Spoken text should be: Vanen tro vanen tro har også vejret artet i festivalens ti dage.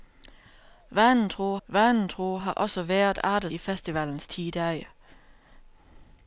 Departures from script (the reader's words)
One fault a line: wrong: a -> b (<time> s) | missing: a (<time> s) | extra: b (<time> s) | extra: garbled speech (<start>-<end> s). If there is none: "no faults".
no faults